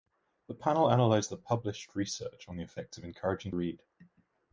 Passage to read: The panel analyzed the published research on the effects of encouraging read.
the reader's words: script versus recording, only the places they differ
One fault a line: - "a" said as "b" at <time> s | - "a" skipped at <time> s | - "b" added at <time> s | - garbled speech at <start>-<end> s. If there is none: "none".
none